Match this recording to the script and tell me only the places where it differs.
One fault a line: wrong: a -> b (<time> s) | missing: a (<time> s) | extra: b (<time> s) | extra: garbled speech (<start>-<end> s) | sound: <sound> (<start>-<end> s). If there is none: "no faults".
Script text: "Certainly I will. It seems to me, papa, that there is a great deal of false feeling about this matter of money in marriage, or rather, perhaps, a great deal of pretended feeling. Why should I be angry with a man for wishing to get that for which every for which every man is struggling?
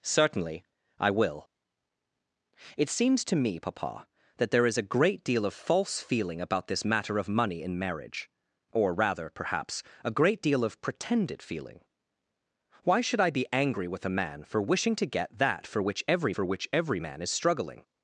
no faults